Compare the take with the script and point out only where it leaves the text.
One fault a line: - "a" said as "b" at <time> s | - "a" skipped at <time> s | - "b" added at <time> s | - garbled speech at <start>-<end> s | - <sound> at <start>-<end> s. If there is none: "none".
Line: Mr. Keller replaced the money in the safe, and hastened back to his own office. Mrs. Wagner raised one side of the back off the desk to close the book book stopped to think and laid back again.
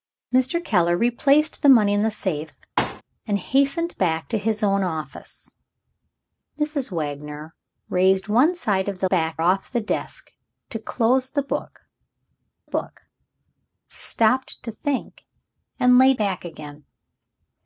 - thud at 2.8-3.0 s